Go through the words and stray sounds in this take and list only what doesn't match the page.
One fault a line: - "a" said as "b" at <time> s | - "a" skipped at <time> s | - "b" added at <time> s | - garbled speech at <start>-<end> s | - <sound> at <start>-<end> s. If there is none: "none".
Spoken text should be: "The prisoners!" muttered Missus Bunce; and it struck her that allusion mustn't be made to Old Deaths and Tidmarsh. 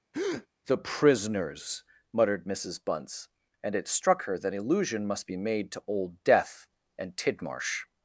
- breath at 0.1-0.5 s
- "mustn't" said as "must" at 5.1 s
- "Deaths" said as "Death" at 6.2 s